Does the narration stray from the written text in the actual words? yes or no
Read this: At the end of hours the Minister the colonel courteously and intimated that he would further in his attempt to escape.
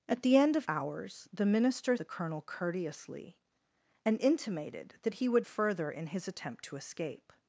no